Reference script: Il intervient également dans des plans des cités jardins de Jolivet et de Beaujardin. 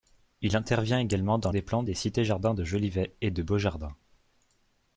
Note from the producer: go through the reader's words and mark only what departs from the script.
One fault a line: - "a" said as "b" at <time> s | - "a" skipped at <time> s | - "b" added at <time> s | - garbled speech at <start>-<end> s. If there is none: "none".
none